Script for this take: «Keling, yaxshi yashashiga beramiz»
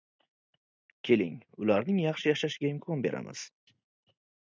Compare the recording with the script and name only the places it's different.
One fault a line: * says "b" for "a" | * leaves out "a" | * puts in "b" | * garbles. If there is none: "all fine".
* puts in "ularning"
* puts in "imkon"